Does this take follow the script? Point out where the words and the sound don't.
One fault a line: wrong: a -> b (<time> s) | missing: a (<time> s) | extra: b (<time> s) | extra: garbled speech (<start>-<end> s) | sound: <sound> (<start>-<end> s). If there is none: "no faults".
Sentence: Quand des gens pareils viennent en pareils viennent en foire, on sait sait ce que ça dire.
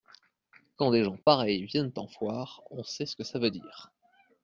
sound: dropout (1.2-1.3 s)
missing: pareils viennent en (2.1 s)
missing: sait (3.0 s)
extra: veut (3.4 s)